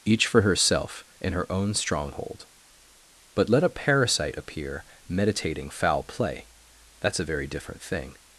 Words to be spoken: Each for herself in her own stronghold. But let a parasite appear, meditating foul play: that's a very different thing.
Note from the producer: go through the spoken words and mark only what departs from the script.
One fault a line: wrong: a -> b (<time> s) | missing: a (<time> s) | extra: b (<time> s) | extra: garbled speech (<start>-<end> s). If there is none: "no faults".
no faults